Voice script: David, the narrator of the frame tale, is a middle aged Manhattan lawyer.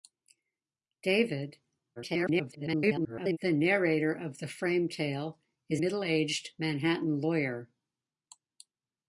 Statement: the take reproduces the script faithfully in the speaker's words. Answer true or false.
false